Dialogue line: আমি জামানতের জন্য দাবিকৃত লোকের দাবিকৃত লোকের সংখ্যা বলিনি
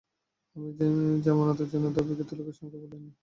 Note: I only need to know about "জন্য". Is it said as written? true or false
true